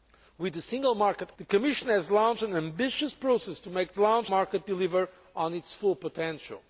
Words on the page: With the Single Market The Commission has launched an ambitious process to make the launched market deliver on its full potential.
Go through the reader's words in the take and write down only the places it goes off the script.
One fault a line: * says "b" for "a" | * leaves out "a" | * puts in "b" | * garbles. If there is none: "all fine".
all fine